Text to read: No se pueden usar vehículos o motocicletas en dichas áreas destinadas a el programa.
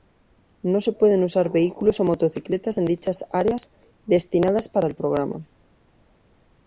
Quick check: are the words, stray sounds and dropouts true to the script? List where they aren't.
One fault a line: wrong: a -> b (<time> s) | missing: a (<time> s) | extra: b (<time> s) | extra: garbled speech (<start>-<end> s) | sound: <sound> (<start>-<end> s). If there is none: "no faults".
wrong: a -> para (4.7 s)